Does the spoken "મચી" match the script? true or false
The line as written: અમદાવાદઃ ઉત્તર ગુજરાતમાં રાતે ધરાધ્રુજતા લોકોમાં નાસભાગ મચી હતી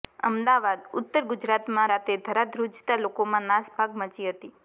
true